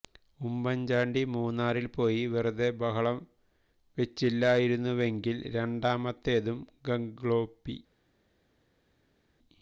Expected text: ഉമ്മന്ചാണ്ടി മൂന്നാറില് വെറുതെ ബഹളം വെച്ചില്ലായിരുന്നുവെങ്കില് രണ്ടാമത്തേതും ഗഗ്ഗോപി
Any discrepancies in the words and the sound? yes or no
yes